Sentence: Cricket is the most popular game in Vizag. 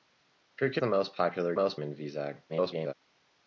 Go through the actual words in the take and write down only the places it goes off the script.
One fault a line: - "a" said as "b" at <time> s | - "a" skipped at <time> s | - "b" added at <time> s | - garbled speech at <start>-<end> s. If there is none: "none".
- "is" skipped at 0.8 s
- "game" said as "most" at 1.5 s
- garbled speech at 2.5-2.9 s